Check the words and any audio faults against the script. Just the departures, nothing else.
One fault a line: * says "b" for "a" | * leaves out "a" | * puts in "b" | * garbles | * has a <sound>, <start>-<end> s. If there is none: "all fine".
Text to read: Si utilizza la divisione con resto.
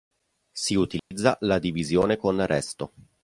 * has a dropout, 1.0-1.1 s